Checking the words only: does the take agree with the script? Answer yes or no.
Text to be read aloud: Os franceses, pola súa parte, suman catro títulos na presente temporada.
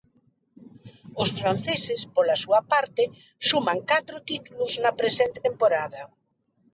yes